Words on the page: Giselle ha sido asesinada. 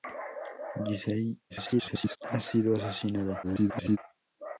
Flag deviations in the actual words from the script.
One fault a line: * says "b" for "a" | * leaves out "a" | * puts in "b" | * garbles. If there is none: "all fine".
* garbles
* garbles